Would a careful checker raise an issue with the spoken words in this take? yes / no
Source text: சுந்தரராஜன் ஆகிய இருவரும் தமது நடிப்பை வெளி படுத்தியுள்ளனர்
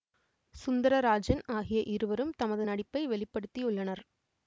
no